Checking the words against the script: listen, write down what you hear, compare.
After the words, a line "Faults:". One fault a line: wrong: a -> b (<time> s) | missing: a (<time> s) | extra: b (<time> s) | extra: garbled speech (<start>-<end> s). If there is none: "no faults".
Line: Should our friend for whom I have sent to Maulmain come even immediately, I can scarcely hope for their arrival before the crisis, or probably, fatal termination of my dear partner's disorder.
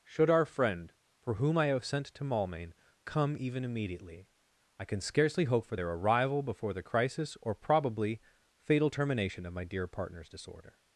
Should our friend for whom I have sent to Maulmain come even immediately, I can scarcely hope for their arrival before the crisis, or probably, fatal termination of my dear partner's disorder.
Faults:
no faults